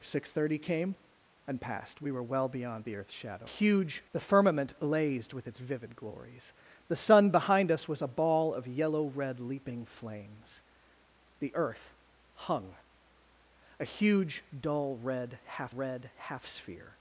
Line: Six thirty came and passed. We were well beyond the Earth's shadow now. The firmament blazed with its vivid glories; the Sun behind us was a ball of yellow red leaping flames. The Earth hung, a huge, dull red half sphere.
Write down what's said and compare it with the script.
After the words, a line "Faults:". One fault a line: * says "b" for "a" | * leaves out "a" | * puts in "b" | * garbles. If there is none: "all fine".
Six thirty came and passed. We were well beyond the Earth's shadow huge. The firmament blazed with its vivid glories; the Sun behind us was a ball of yellow red leaping flames. The Earth hung, a huge, dull red half red half sphere.
Faults:
* says "huge" for "now"
* puts in "red half"